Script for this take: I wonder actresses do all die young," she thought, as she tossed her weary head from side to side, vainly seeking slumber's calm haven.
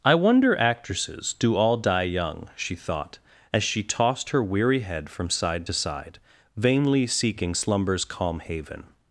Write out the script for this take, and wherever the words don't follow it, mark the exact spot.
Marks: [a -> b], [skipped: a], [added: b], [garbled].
I wonder actresses do all die young," she thought, as she tossed her weary head from side to side, vainly seeking slumber's calm haven.